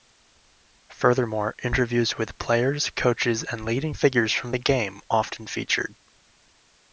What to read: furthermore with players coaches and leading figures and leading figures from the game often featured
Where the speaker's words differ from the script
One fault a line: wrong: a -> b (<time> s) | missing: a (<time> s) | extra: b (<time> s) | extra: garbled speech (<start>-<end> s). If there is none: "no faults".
extra: interviews (1.6 s)
missing: and leading figures (4.3 s)